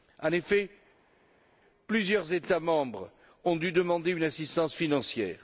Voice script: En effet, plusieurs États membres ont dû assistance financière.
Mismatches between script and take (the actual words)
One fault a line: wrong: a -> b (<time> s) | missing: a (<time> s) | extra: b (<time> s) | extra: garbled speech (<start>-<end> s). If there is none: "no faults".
extra: demander une (3.7 s)